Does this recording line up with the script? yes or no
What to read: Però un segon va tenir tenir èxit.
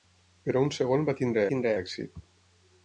yes